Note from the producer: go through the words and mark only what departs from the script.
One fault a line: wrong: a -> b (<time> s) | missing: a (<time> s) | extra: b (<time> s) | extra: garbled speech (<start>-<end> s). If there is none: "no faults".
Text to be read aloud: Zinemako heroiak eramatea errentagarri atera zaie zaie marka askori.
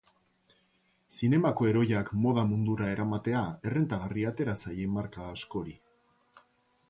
extra: moda mundura (2.2 s)
missing: zaie (4.9 s)